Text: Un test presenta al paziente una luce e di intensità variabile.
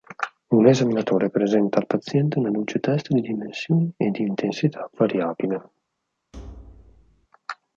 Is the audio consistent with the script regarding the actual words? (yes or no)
no